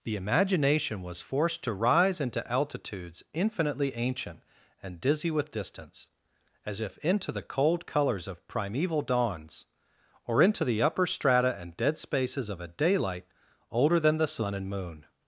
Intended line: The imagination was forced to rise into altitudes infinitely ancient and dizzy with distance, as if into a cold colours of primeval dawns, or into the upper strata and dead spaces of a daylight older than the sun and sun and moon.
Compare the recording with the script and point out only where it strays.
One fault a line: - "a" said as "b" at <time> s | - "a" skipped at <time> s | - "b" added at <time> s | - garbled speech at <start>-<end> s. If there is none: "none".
- "a" said as "the" at 7.3 s
- "sun and" skipped at 14.7 s